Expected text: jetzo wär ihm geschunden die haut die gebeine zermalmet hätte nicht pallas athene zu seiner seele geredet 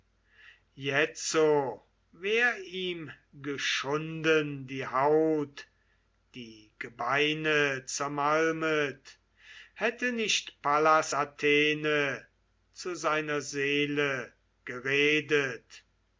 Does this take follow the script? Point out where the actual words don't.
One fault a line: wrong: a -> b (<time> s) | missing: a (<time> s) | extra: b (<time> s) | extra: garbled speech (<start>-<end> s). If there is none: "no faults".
no faults